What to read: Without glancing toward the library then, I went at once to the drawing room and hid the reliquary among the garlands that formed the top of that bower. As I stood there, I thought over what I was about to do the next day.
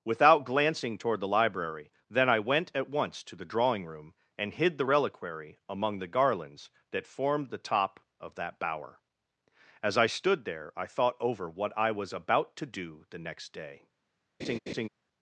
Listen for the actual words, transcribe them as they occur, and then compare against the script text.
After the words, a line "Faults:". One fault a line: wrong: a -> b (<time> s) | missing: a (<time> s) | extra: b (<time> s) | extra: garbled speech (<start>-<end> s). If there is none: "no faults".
Without glancing toward the library then, I went at once to the drawing room and hid the reliquary among the garlands that formed the top of that bower. As I stood there, I thought over what I was about to do the next day.
Faults:
no faults